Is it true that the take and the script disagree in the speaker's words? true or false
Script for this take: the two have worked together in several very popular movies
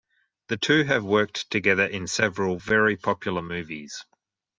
false